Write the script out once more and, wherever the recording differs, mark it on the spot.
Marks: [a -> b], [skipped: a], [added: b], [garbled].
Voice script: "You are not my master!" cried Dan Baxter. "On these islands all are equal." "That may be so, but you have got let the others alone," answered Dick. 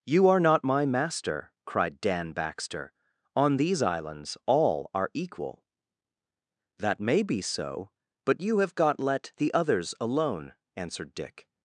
"You are not my master!" cried Dan Baxter. "On these islands all are equal." "That may be so, but you have got let the others alone," answered Dick.